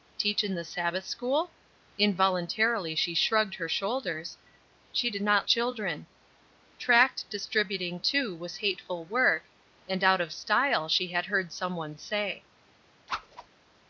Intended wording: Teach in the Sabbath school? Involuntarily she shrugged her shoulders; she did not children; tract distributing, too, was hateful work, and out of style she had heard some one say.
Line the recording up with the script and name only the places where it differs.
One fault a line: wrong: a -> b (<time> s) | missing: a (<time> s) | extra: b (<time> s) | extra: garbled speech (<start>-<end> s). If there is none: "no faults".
no faults